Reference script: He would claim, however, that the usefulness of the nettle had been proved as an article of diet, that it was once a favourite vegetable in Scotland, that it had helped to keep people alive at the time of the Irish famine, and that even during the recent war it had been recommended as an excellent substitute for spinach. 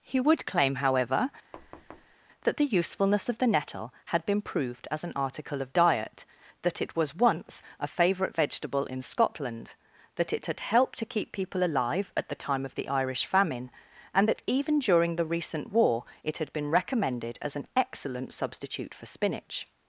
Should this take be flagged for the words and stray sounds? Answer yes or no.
yes